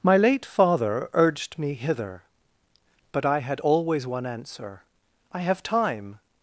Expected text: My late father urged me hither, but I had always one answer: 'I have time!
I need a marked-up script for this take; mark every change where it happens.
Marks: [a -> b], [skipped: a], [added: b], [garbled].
My late father urged me hither, but I had always one answer: 'I have time!